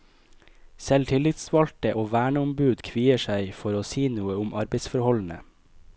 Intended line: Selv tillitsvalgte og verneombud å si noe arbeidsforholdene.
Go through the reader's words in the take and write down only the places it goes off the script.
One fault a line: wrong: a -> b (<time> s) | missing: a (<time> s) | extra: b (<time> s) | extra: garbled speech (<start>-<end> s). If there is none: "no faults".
extra: kvier seg for (2.9 s)
extra: om (4.5 s)